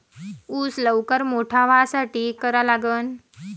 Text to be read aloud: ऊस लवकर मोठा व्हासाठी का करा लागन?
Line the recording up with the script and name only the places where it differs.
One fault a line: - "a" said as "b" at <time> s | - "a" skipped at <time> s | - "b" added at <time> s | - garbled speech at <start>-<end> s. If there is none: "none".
- "का" skipped at 2.3 s